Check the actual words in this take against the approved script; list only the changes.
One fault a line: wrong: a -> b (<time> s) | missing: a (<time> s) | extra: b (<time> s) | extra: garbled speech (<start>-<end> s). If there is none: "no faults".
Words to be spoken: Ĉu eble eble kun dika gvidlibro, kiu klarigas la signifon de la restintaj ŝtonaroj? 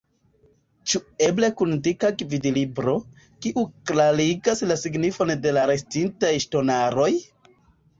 missing: eble (1.5 s)